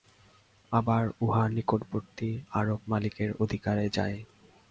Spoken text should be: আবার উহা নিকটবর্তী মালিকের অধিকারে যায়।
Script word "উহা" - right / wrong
right